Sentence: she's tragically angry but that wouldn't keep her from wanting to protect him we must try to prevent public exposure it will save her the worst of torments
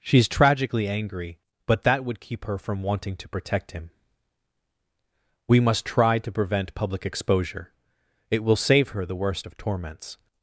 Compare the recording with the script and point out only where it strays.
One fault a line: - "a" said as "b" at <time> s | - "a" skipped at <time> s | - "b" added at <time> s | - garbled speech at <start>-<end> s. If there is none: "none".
- "wouldn't" said as "would" at 2.0 s